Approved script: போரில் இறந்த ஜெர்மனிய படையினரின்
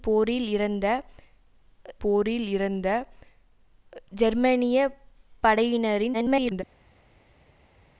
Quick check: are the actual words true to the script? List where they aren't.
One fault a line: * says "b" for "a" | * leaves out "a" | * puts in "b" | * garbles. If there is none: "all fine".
* puts in "போரில் இறந்த"
* garbles